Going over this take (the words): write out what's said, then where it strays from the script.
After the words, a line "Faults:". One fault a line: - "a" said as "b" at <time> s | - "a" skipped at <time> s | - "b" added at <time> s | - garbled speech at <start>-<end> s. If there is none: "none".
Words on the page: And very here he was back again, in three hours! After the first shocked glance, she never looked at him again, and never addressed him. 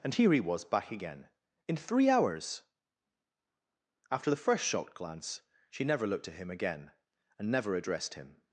And here he was back again, in three hours! After the first shocked glance, she never looked at him again, and never addressed him.
Faults:
- "very" skipped at 0.1 s